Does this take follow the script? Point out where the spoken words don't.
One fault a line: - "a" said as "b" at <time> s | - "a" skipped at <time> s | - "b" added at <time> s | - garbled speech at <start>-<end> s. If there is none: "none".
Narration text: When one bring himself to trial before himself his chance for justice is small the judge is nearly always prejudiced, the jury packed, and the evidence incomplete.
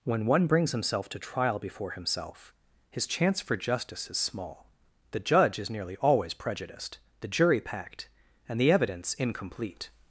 - "bring" said as "brings" at 0.5 s